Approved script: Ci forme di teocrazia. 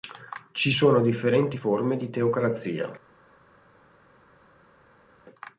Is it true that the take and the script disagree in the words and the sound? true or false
true